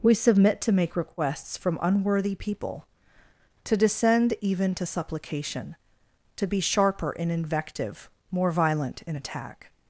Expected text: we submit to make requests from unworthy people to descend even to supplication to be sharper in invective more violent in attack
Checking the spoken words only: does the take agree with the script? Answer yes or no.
yes